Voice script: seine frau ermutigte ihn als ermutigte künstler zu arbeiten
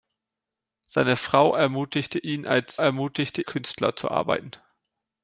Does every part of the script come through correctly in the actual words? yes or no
yes